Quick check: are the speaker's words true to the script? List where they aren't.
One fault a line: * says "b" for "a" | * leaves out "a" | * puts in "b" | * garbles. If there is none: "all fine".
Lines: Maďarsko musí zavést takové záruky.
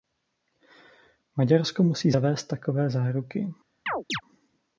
all fine